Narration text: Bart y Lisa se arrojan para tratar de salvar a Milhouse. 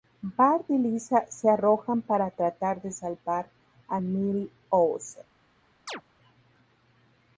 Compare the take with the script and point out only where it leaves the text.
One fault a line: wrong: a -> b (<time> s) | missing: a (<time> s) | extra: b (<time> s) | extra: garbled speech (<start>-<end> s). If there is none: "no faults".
no faults